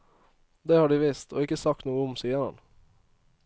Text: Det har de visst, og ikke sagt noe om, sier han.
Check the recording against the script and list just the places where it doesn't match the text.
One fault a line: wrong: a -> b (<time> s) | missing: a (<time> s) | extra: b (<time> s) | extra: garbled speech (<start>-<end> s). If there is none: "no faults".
no faults